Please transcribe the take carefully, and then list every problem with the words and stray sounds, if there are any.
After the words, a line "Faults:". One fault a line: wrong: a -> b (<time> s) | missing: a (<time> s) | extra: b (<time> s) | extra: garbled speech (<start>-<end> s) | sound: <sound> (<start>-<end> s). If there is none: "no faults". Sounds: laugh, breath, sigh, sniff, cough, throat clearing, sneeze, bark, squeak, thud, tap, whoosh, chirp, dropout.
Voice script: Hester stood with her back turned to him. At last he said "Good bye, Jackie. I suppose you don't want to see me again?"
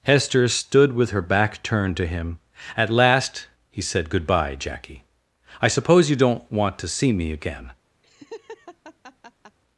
Hester stood with her back turned to him. At last he said "Good bye, Jackie. I suppose you don't want to see me again?"
Faults:
sound: laugh (8.0-9.6 s)